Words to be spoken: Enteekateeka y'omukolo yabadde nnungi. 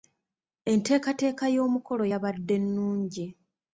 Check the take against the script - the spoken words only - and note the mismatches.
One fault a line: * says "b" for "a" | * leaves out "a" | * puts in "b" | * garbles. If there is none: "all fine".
all fine